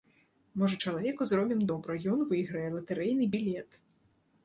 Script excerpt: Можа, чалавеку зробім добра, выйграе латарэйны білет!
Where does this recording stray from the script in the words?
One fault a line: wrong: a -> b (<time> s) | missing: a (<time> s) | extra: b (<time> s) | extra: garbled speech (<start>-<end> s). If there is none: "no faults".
extra: ён (2.1 s)